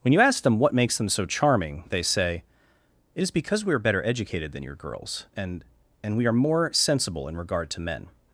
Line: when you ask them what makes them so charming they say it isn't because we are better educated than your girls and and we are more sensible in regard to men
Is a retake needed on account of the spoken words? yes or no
yes